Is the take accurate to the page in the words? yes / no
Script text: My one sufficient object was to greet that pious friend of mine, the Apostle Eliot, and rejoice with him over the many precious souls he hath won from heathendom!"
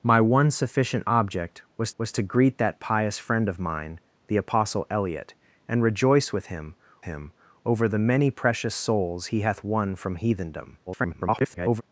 no